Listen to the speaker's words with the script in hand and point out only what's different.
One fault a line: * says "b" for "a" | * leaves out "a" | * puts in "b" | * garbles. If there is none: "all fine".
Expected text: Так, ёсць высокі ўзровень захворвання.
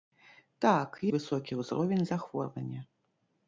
* leaves out "ёсць"